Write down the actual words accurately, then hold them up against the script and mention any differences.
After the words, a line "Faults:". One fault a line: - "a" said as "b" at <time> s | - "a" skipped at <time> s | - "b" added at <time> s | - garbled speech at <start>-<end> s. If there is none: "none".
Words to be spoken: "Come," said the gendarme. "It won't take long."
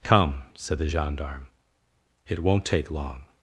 "Come," said the gendarme. "It won't take long."
Faults:
none